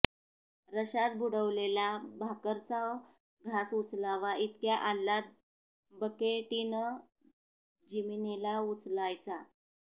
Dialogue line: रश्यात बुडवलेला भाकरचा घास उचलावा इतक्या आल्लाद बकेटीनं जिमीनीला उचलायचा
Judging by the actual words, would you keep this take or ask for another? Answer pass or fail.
pass